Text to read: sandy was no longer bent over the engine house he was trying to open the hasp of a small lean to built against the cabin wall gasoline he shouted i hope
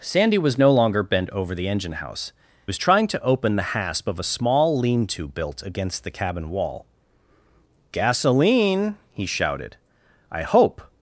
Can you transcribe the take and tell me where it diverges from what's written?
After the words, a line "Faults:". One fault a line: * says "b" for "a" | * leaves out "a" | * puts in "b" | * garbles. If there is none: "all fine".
sandy was no longer bent over the engine house was trying to open the hasp of a small lean to built against the cabin wall gasoline he shouted i hope
Faults:
* leaves out "he"